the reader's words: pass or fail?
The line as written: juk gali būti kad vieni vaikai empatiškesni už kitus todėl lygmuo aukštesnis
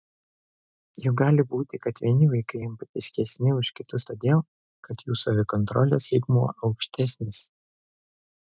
fail